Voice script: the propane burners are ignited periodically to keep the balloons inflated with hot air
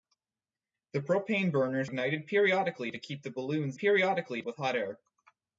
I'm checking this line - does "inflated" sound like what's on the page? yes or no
no